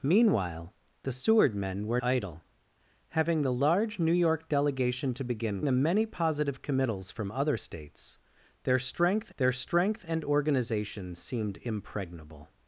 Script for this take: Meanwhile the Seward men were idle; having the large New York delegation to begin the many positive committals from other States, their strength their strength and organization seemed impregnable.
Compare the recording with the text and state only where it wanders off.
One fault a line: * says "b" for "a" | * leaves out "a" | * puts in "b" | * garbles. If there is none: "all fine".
all fine